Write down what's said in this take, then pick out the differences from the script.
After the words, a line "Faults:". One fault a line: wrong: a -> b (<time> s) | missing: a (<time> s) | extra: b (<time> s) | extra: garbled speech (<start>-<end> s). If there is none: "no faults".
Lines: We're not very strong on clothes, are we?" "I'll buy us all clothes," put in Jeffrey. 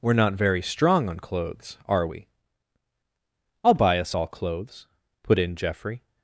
We're not very strong on clothes, are we?" "I'll buy us all clothes," put in Jeffrey.
Faults:
no faults